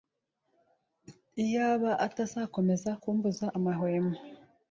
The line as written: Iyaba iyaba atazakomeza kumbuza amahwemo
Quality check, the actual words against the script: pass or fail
fail